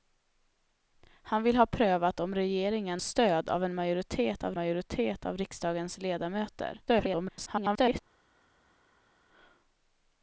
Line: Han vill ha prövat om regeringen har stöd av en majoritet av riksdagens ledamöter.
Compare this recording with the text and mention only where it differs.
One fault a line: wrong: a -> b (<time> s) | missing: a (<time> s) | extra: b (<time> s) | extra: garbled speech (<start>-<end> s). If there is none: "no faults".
missing: har (3.0 s)
extra: majoritet av (4.5 s)
extra: garbled speech (6.9-8.0 s)